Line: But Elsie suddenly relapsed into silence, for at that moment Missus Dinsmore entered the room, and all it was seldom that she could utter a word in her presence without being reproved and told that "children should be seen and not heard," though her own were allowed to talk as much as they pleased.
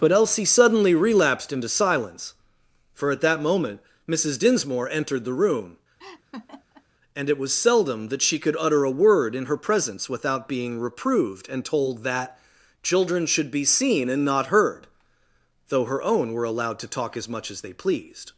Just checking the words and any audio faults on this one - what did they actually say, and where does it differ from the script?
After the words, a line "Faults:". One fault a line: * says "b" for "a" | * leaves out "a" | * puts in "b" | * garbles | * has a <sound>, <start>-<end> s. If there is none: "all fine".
But Elsie suddenly relapsed into silence, for at that moment Missus Dinsmore entered the room, and it was seldom that she could utter a word in her presence without being reproved and told that "children should be seen and not heard," though her own were allowed to talk as much as they pleased.
Faults:
* has a laugh, 6.0-6.9 s
* leaves out "all"